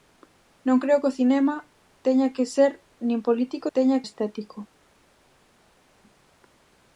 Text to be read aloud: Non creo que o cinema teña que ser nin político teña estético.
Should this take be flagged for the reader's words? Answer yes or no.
no